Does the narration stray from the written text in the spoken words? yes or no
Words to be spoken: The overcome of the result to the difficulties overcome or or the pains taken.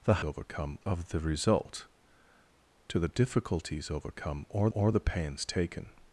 no